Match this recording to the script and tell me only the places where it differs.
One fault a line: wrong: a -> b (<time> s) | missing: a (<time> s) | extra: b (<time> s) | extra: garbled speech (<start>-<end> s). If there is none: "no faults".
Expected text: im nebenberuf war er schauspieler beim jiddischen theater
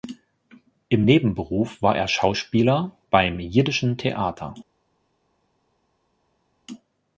no faults